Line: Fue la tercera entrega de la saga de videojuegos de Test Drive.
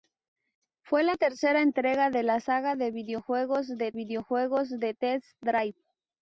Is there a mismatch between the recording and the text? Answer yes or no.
yes